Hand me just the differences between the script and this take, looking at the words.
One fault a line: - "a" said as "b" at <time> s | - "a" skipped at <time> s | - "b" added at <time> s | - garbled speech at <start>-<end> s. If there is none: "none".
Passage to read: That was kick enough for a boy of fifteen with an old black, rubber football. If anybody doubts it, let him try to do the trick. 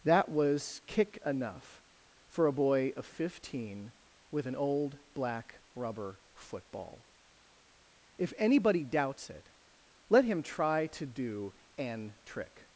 - "the" said as "an" at 11.8 s